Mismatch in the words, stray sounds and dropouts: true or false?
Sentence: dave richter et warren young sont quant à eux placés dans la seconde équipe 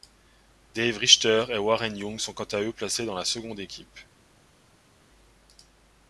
false